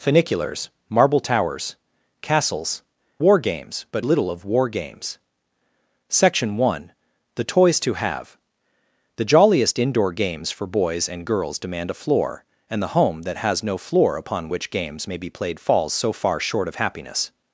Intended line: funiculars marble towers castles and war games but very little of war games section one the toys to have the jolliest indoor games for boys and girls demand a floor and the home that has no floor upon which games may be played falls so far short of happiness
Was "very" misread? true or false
true